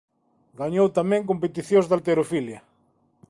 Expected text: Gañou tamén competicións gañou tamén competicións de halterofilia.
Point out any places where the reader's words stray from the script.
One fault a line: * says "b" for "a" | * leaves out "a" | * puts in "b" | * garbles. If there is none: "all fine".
* leaves out "gañou tamén competicións"